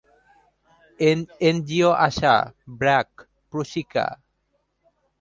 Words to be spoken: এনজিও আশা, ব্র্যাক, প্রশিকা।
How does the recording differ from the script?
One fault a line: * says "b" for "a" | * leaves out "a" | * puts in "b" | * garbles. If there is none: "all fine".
all fine